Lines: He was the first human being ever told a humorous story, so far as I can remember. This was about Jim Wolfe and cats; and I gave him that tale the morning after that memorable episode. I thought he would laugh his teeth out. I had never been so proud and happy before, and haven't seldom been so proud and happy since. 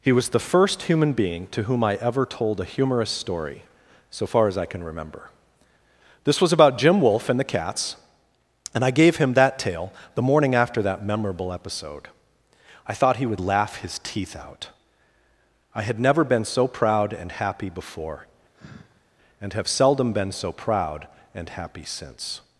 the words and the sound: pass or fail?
fail